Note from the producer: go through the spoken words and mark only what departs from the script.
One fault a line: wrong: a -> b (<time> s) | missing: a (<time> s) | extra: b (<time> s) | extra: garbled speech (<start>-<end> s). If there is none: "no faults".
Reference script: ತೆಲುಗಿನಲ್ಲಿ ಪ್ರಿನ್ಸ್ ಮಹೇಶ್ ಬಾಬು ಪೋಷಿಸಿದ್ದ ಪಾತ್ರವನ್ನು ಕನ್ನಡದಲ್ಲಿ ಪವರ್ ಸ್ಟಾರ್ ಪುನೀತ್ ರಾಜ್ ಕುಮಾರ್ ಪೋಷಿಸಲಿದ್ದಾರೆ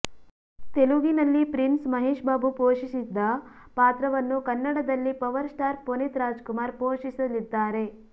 no faults